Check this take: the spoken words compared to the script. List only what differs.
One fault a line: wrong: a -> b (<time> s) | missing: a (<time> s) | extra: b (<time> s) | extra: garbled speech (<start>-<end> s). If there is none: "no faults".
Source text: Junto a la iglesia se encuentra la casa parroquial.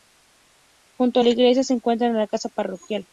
no faults